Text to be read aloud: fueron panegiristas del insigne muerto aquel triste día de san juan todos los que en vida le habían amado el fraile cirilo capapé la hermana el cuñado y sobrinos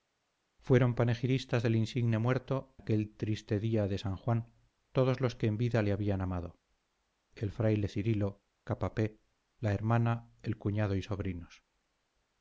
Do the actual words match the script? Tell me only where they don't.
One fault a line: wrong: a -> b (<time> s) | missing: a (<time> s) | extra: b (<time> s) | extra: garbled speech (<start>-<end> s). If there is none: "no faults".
no faults